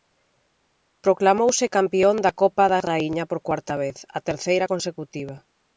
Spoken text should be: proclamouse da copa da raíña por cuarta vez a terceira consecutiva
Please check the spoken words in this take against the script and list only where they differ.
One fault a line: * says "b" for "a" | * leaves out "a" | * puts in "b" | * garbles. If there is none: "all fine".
* puts in "campión"